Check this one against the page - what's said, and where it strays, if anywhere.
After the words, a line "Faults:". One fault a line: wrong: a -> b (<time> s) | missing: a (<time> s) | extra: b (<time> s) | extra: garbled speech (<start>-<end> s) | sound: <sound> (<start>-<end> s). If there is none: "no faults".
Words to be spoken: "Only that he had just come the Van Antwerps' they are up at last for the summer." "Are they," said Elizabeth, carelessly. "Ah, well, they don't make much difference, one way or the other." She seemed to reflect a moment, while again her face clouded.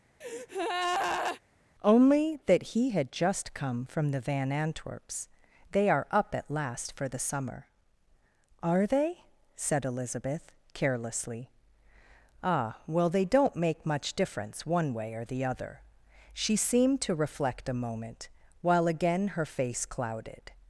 "Only that he had just come from the Van Antwerps' they are up at last for the summer." "Are they," said Elizabeth, carelessly. "Ah, well, they don't make much difference, one way or the other." She seemed to reflect a moment, while again her face clouded.
Faults:
sound: breath (0.2-1.4 s)
extra: from (3.8 s)